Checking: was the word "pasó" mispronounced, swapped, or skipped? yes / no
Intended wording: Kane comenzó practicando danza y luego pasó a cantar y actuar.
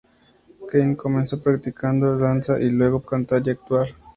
yes